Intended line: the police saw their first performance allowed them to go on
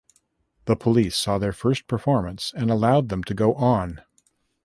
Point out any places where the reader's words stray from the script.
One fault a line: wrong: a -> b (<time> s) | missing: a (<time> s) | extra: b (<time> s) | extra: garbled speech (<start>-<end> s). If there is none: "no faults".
extra: and (2.5 s)